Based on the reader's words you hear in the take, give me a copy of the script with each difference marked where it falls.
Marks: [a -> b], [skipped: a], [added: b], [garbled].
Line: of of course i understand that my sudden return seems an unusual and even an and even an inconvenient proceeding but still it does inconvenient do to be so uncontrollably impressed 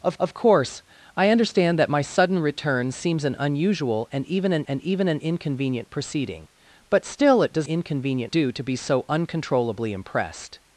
of of course i understand that my sudden return seems an unusual and even an and even an inconvenient proceeding but still it does inconvenient do to be so uncontrollably impressed